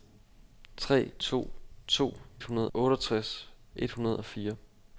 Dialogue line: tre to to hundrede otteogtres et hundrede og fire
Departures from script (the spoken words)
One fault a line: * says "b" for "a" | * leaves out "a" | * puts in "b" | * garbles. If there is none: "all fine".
all fine